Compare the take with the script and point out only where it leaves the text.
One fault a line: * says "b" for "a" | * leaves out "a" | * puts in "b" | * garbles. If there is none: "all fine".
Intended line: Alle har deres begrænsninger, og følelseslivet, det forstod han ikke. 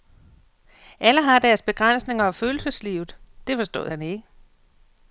all fine